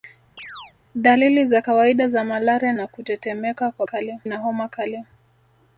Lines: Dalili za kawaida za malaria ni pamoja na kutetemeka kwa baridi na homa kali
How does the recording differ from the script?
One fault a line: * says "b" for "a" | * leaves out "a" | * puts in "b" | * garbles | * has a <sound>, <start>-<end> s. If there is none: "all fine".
* has a chirp, 0.4-0.7 s
* leaves out "ni pamoja"
* says "kali" for "baridi"